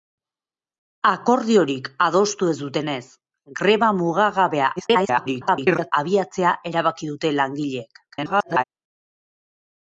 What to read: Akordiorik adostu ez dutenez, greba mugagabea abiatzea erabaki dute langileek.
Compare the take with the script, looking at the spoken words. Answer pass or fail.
fail